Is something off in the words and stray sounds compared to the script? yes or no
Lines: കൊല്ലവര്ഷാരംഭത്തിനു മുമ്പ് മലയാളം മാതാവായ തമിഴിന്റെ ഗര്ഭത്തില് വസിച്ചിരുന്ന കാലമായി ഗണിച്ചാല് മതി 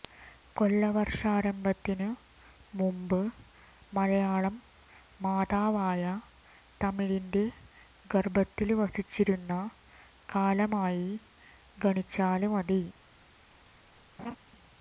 yes